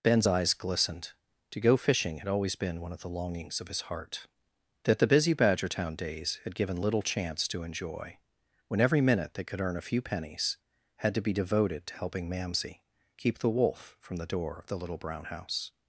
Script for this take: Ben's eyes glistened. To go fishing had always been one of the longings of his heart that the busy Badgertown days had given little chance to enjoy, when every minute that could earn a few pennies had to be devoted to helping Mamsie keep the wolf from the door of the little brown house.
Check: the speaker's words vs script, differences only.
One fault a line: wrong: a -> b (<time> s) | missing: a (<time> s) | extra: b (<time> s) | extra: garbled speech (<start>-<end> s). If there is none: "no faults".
wrong: that -> they (9.3 s)